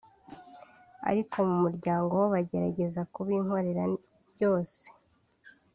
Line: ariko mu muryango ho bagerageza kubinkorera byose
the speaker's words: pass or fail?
pass